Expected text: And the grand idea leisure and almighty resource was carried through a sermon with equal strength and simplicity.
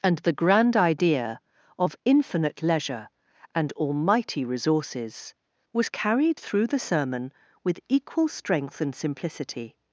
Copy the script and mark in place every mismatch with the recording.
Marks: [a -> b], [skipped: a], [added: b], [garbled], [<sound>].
And the grand idea [added: of infinite] leisure and almighty [resource -> resources] was carried through [a -> the] sermon with equal strength and simplicity.